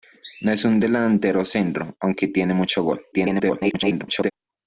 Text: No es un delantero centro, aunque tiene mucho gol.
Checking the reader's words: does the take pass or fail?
fail